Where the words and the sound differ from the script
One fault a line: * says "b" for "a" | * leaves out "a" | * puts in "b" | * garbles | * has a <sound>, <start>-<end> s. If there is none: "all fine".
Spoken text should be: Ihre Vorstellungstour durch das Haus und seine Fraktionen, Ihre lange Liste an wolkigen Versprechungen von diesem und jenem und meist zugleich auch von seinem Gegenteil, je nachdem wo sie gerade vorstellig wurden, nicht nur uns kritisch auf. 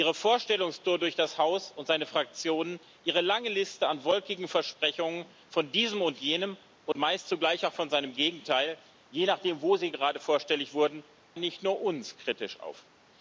* has a dropout, 6.9-7.0 s